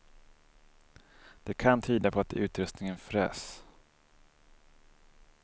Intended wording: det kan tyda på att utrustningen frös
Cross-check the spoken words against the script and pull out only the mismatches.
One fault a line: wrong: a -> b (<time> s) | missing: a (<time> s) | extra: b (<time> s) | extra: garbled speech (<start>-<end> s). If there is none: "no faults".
no faults